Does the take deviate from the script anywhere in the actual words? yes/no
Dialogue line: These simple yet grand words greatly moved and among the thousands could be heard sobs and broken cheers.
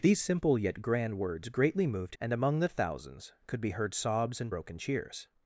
no